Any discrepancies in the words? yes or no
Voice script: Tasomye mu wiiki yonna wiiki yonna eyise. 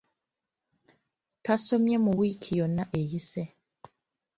yes